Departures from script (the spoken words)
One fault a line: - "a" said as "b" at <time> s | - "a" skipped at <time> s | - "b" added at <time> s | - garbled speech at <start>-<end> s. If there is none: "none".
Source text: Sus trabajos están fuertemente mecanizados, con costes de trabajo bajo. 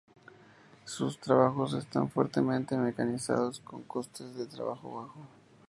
none